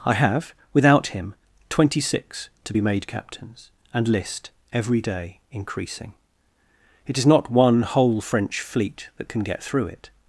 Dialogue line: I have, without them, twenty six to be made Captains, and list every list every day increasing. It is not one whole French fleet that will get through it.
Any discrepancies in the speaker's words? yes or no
yes